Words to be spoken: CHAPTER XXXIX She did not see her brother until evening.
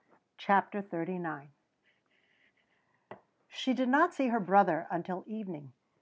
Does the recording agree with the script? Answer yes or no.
yes